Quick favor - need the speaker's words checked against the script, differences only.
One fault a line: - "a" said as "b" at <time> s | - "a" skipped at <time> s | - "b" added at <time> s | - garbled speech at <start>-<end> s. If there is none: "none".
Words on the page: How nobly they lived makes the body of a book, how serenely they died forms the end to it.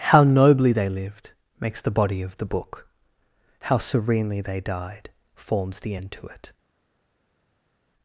- "a" said as "the" at 2.4 s